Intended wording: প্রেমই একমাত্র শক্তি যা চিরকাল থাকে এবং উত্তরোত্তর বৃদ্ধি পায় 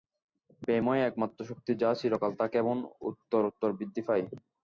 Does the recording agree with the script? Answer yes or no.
yes